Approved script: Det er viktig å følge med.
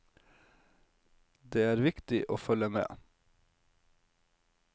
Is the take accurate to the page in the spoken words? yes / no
yes